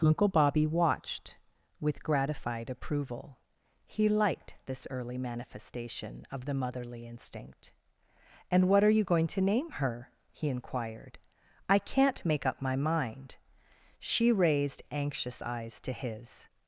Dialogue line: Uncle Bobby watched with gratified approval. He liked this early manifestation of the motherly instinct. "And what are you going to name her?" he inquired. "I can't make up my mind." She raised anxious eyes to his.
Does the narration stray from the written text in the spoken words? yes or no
no